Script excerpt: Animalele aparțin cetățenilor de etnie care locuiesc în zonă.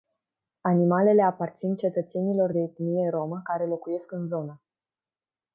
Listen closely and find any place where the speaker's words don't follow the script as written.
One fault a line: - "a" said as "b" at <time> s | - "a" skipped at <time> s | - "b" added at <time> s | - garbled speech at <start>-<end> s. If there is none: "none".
- "rromă" added at 3.1 s